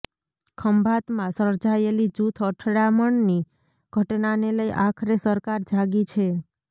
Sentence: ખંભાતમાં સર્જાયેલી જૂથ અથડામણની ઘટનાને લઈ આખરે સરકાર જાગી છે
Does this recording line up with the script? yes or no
yes